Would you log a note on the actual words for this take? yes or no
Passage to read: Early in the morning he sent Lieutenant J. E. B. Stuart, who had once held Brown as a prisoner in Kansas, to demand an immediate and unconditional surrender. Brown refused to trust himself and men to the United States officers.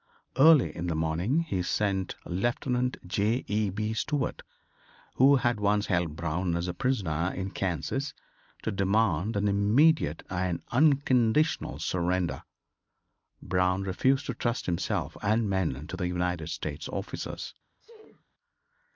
no